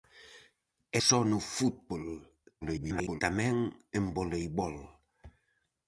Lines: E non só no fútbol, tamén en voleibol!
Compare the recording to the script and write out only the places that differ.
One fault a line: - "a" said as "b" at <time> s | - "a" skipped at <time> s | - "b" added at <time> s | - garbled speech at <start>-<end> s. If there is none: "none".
- "non" skipped at 1.0 s
- garbled speech at 2.6-3.2 s